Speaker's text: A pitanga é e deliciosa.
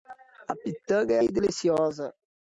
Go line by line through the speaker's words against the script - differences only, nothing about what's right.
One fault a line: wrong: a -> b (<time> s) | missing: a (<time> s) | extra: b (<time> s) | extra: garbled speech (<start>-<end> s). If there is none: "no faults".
no faults